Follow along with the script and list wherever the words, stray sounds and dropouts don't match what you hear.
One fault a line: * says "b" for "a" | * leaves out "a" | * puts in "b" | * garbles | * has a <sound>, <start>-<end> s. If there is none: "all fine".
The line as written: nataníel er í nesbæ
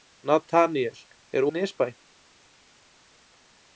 all fine